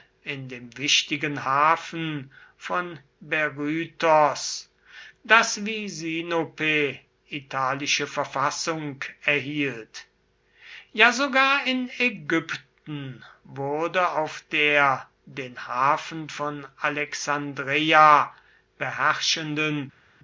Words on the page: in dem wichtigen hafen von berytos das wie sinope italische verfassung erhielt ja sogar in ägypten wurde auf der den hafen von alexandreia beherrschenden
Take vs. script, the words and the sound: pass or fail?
pass